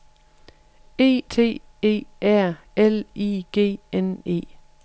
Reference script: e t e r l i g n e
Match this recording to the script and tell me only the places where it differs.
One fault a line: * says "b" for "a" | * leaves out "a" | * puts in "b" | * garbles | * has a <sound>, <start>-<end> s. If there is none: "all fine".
all fine